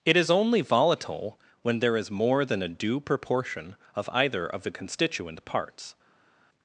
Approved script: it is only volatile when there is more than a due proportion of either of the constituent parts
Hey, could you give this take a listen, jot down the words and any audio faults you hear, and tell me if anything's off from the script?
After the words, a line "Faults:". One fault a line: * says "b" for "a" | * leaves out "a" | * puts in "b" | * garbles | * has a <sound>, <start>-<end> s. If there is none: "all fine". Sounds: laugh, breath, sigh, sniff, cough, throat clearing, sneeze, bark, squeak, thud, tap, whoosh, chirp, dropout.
it is only volatile when there is more than a due proportion of either of the constituent parts
Faults:
all fine